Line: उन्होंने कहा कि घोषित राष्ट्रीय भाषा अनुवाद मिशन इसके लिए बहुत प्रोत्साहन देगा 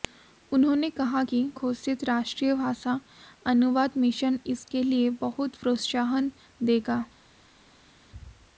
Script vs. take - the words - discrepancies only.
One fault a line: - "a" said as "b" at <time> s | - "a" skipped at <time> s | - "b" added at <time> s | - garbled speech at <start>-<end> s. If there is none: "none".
none